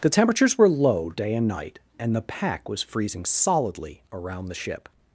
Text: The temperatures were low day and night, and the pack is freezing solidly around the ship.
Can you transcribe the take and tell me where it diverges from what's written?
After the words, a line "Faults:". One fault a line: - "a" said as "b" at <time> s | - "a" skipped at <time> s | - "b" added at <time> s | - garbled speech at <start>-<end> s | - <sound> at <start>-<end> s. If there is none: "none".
The temperatures were low day and night, and the pack was freezing solidly around the ship.
Faults:
- "is" said as "was" at 2.7 s